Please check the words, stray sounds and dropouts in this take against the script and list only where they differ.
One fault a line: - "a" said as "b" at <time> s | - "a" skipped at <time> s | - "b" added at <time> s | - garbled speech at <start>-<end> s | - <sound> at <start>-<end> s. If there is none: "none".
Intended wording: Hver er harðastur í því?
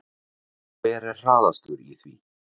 none